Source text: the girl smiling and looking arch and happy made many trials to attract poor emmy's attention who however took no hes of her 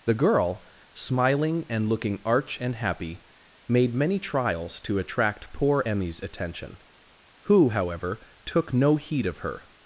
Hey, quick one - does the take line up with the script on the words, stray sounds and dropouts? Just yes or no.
no